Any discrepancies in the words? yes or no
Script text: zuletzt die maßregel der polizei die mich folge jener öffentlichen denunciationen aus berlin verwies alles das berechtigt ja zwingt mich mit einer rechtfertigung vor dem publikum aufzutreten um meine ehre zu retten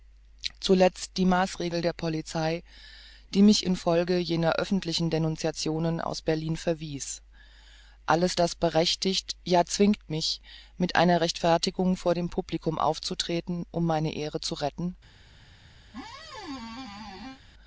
yes